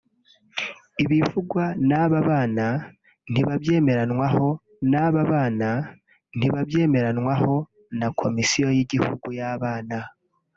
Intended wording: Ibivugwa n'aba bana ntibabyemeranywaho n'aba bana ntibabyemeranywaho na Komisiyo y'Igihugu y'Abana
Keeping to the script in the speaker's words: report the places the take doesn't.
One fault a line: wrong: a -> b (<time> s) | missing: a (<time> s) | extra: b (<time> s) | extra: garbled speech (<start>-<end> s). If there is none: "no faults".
no faults